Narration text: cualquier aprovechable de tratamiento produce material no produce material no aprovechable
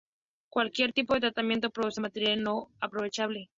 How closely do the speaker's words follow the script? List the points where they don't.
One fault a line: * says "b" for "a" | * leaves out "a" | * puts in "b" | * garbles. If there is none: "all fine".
* says "tipo" for "aprovechable"
* leaves out "produce material no"